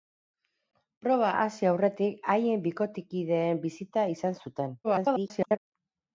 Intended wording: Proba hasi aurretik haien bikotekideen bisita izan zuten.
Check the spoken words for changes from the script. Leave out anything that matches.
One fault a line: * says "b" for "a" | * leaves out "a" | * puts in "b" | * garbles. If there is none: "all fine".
* garbles